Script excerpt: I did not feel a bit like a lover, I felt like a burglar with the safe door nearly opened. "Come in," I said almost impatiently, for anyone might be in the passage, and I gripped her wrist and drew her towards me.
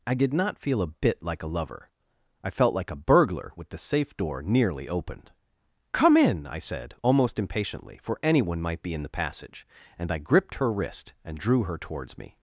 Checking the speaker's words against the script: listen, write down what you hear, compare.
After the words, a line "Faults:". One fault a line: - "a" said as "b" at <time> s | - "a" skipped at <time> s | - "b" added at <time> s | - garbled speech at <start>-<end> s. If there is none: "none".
I did not feel a bit like a lover, I felt like a burglar with the safe door nearly opened. "Come in," I said almost impatiently, for anyone might be in the passage, and I gripped her wrist and drew her towards me.
Faults:
none